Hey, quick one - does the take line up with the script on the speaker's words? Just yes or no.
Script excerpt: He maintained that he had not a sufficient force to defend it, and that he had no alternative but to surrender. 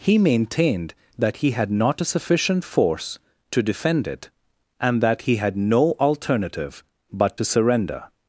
yes